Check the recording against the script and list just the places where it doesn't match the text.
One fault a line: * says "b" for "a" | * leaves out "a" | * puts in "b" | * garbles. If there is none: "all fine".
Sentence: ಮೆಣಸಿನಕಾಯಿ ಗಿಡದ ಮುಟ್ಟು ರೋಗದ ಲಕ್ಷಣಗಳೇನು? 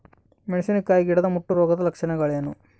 all fine